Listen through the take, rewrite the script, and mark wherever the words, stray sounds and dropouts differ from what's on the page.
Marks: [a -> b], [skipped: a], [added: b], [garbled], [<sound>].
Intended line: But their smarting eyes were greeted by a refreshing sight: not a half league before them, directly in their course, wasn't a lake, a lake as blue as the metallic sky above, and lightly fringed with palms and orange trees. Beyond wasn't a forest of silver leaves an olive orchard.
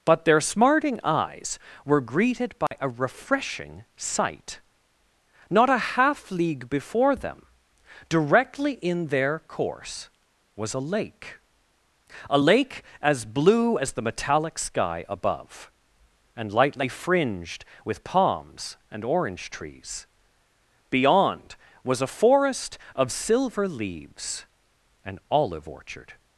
But their smarting eyes were greeted by [dropout] a refreshing sight: not a half league before them, directly in their course, [wasn't -> was] a lake, a lake as blue as the metallic sky above, and lightly fringed with palms and orange trees. Beyond [wasn't -> was] a forest of silver leaves an olive orchard.